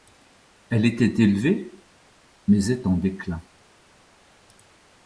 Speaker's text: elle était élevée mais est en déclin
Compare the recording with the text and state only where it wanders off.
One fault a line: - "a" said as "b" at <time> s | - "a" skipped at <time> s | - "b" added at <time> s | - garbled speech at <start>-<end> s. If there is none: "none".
none